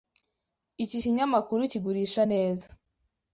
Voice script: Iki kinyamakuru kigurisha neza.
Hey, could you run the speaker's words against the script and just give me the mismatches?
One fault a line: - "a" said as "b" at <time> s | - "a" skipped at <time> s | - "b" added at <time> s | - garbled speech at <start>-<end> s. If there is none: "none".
none